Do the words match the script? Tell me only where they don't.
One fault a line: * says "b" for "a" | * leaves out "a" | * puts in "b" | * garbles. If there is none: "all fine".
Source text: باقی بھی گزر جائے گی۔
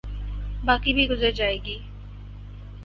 all fine